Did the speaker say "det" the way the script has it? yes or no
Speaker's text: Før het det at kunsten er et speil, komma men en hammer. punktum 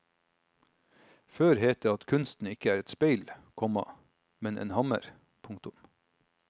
yes